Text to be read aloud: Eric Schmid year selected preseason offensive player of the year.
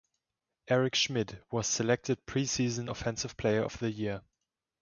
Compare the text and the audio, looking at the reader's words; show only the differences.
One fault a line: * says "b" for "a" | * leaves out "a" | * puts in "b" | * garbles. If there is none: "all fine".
* says "was" for "year"